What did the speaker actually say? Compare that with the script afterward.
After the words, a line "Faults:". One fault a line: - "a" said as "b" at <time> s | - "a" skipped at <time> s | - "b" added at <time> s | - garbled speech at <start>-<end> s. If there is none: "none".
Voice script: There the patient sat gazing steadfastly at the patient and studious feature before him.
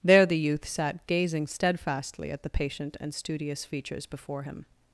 There the youth sat gazing steadfastly at the patient and studious features before him.
Faults:
- "patient" said as "youth" at 0.4 s
- "feature" said as "features" at 3.6 s